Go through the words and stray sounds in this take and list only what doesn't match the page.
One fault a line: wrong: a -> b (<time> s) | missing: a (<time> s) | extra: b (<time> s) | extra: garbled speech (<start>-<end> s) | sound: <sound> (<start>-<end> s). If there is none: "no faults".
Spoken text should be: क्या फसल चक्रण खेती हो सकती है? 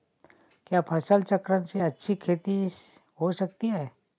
extra: से अच्छी (1.6 s)